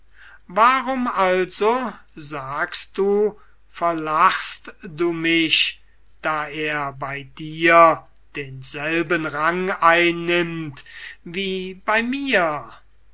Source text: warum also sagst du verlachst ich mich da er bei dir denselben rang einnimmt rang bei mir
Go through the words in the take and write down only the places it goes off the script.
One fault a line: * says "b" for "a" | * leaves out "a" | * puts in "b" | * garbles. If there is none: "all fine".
* says "du" for "ich"
* says "wie" for "rang"